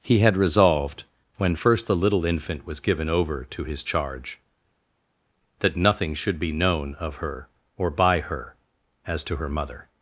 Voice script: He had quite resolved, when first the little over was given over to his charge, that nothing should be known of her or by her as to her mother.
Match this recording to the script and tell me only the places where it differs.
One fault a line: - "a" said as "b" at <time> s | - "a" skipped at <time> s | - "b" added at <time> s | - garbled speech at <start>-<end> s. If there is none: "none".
- "quite" skipped at 0.4 s
- "over" said as "infant" at 2.2 s